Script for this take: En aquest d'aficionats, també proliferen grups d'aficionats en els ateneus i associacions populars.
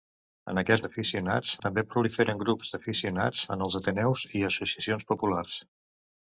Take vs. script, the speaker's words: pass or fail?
pass